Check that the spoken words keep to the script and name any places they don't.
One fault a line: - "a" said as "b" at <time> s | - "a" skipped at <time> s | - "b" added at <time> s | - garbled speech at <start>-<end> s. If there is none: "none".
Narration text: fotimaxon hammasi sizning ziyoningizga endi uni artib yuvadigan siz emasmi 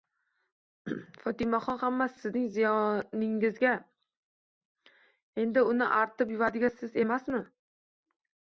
none